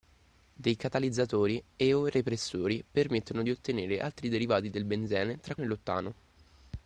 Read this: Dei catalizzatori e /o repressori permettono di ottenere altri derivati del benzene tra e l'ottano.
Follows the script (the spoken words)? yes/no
yes